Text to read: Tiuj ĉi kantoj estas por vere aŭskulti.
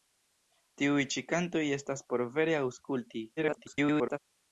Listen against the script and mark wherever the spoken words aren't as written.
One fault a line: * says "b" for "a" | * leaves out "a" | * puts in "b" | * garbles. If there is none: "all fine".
* garbles